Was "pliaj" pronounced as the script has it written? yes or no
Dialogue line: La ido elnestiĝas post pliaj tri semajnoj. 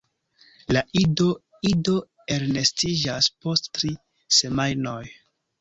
no